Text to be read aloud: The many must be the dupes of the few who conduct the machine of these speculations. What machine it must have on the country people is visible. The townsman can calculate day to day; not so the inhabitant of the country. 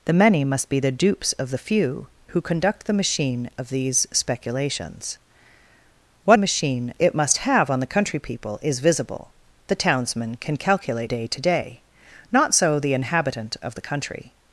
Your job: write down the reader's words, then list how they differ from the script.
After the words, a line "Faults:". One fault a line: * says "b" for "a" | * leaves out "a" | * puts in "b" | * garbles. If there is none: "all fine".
The many must be the dupes of the few who conduct the machine of these speculations. What machine it must have on the country people is visible. The townsman can calculate day to day; not so the inhabitant of the country.
Faults:
all fine